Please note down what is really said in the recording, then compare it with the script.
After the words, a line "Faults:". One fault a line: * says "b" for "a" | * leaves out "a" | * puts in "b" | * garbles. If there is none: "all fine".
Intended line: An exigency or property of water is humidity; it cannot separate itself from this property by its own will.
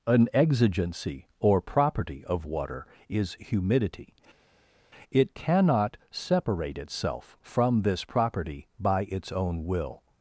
An exigency or property of water is humidity; it cannot separate itself from this property by its own will.
Faults:
all fine